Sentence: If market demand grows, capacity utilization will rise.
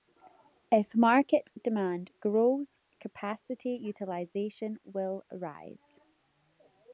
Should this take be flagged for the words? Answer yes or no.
no